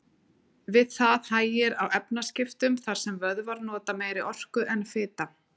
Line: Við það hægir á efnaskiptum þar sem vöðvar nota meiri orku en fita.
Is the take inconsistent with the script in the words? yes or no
no